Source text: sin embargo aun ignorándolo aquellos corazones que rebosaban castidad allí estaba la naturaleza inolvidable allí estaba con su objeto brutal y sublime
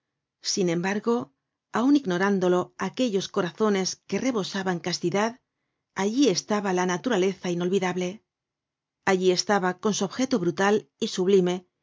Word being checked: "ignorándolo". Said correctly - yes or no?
yes